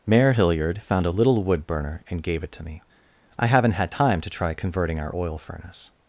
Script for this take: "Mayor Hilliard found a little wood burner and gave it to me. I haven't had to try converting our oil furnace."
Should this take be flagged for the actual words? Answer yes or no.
yes